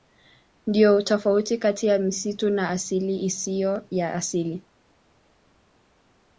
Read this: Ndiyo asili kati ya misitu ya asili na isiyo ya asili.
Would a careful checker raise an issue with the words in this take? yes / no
yes